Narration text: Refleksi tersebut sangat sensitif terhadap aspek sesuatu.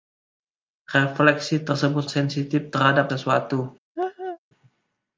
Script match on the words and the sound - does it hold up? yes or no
no